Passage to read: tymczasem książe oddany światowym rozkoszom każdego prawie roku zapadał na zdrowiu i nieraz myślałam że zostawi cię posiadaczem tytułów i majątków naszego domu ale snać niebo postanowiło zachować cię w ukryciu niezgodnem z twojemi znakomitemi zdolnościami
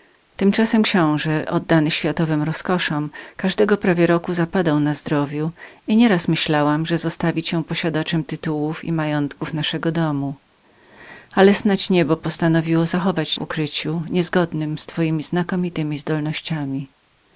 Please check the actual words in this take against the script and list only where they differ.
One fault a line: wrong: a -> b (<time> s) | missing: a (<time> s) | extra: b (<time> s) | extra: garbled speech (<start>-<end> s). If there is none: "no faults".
missing: cię (13.3 s)